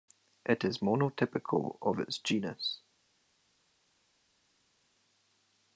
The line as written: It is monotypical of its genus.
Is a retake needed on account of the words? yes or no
no